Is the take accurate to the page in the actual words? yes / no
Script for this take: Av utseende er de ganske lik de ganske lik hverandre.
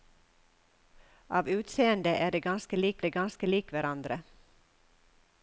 yes